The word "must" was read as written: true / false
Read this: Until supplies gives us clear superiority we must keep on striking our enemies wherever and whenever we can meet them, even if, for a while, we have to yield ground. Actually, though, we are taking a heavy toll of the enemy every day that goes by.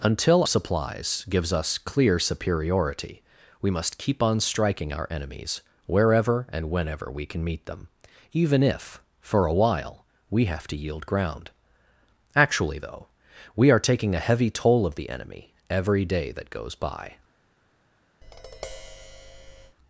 true